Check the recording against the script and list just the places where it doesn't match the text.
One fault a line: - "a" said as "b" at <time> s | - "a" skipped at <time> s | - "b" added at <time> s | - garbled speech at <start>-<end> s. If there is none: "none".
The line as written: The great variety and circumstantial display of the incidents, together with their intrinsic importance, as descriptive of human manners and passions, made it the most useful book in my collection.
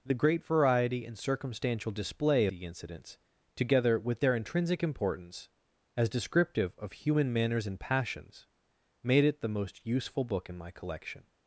- "of" skipped at 2.5 s